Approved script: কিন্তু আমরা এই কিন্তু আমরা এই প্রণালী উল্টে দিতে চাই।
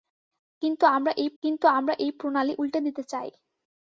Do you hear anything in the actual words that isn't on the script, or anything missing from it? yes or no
no